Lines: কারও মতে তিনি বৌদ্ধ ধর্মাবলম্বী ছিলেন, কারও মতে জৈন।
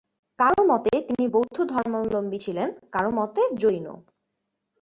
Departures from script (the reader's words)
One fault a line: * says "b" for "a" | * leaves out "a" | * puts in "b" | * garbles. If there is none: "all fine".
all fine